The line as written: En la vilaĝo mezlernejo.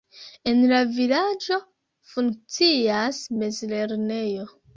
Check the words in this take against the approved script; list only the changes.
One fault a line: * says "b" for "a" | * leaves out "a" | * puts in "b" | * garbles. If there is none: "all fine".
* puts in "funkcias"